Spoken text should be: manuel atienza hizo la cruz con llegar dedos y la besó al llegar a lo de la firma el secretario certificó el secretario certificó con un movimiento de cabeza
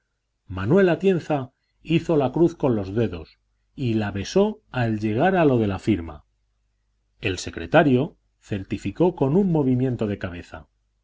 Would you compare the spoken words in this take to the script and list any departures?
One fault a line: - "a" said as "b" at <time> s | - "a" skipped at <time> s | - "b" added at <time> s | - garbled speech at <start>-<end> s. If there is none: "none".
- "llegar" said as "los" at 2.8 s
- "el secretario certificó" skipped at 9.1 s